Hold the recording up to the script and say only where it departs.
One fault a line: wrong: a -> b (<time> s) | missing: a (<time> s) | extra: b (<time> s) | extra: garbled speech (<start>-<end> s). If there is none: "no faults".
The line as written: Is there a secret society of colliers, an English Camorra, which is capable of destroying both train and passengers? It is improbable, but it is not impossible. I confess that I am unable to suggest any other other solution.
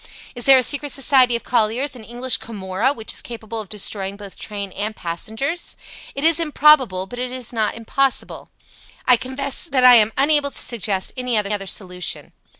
no faults